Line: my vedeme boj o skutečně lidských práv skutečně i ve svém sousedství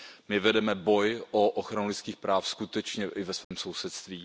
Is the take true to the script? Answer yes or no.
no